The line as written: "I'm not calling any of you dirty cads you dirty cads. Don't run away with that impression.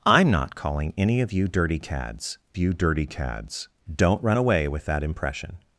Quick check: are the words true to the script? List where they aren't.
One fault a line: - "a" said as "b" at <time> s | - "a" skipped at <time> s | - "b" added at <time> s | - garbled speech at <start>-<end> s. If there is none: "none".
none